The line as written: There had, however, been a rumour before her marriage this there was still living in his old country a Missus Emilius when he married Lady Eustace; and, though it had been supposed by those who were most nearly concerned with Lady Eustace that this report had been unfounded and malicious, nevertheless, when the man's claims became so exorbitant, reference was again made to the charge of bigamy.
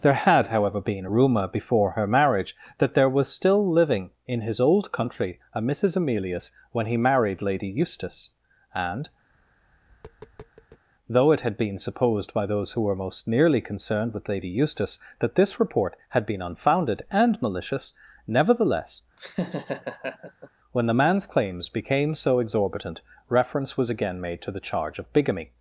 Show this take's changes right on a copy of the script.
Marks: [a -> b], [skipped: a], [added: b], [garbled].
There had, however, been a rumour before her marriage [this -> that] there was still living in his old country a Missus Emilius when he married Lady Eustace; and, though it had been supposed by those who were most nearly concerned with Lady Eustace that this report had been unfounded and malicious, nevertheless, when the man's claims became so exorbitant, reference was again made to the charge of bigamy.